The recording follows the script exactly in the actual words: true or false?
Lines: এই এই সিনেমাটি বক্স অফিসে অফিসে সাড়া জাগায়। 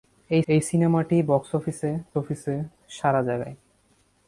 true